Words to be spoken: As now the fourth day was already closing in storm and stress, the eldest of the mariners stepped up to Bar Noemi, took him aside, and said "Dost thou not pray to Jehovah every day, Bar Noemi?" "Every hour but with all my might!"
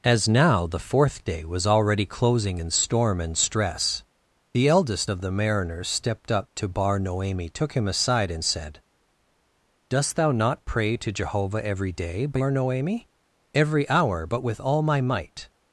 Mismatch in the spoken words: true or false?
false